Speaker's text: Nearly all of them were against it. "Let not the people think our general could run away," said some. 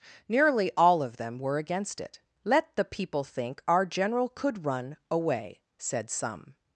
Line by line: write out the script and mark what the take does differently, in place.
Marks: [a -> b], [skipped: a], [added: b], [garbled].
Nearly all of them were against it. "Let [skipped: not] the people think our general could run away," said some.